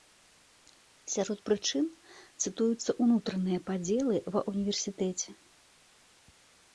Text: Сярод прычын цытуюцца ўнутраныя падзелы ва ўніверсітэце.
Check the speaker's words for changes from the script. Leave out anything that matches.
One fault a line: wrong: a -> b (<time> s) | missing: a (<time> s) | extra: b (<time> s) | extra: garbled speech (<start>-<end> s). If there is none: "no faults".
no faults